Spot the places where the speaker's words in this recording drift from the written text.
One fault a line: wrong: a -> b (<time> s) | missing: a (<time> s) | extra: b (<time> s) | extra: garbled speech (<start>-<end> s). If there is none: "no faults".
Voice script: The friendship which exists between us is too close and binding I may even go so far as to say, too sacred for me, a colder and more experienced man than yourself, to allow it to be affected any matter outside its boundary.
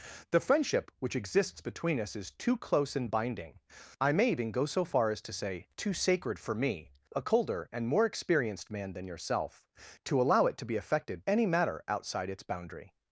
no faults